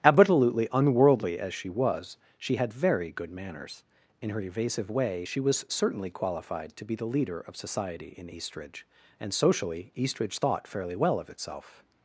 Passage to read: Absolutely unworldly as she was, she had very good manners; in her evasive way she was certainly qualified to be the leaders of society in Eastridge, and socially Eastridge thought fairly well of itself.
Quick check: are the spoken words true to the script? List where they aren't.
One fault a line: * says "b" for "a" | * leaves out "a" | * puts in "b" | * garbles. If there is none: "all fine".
* says "leader" for "leaders"